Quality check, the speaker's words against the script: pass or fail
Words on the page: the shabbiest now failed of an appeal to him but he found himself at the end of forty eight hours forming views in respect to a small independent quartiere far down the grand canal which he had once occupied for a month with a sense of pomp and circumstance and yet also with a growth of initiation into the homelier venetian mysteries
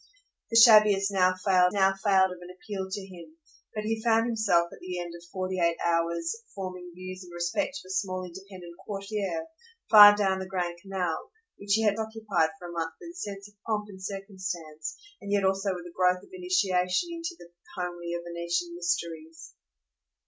fail